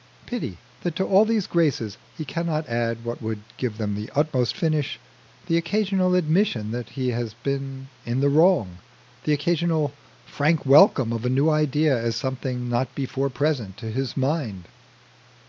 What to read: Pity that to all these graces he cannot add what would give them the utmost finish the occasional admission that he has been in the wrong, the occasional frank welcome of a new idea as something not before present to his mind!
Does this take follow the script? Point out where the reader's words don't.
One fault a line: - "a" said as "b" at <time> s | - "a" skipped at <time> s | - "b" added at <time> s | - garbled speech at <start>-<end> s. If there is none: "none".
none